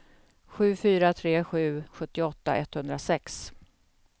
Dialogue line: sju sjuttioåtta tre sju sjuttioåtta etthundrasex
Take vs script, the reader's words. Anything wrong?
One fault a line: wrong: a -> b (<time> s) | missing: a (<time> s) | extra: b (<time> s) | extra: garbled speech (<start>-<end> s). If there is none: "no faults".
wrong: sjuttioåtta -> fyra (0.7 s)